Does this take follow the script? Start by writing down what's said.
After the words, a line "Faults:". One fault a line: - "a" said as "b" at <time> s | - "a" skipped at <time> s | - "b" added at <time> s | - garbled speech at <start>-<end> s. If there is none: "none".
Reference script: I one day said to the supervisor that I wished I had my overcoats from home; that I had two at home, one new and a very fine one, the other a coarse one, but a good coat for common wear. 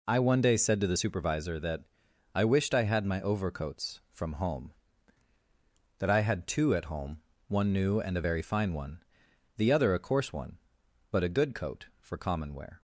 I one day said to the supervisor that I wished I had my overcoats from home; that I had two at home, one new and a very fine one, the other a coarse one, but a good coat for common wear.
Faults:
none